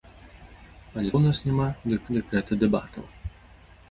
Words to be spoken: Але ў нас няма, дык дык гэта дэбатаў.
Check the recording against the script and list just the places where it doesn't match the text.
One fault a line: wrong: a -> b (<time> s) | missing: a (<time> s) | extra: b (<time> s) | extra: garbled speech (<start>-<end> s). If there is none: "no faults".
no faults